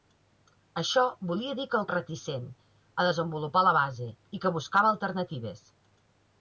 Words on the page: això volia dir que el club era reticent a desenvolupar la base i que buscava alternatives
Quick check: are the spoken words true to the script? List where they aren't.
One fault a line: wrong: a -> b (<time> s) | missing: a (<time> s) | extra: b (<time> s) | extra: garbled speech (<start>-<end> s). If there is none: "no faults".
missing: club era (1.9 s)